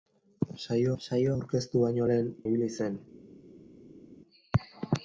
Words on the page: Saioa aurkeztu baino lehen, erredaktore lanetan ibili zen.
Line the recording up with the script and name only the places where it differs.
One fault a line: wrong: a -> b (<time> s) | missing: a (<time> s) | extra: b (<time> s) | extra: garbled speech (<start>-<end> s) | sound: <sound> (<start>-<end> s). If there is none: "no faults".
extra: saioa (1.0 s)
missing: erredaktore lanetan (2.3 s)